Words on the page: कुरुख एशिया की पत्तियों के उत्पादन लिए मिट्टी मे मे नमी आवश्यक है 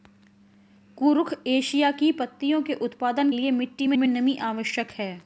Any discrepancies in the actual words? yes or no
no